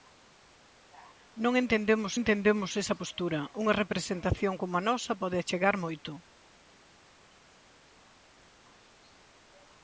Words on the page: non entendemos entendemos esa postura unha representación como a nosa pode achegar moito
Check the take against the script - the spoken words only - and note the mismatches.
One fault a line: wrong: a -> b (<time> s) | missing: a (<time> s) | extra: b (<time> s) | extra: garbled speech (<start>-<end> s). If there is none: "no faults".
no faults